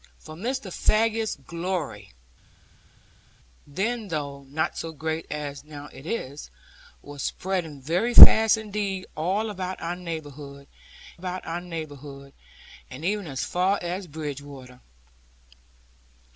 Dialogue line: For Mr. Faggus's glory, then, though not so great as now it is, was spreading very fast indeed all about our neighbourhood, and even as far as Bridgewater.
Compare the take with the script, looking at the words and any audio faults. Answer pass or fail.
fail